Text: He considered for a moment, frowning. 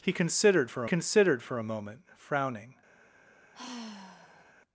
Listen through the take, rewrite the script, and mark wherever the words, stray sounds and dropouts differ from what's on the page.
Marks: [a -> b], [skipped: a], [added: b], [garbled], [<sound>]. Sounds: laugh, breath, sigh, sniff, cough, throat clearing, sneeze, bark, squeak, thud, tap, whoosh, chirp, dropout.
He considered for [added: considered for] a moment, frowning. [sigh]